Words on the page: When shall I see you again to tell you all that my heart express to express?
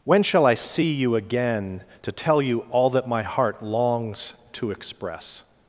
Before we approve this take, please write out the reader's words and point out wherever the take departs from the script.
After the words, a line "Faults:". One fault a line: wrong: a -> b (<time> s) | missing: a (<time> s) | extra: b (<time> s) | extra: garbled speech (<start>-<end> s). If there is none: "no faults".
When shall I see you again to tell you all that my heart longs to express?
Faults:
wrong: express -> longs (3.6 s)